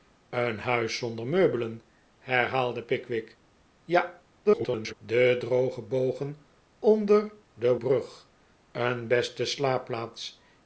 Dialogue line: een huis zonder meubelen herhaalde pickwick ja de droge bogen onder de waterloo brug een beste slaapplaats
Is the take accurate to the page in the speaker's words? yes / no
no